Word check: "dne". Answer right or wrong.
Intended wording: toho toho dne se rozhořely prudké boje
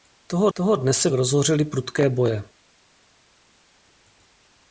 right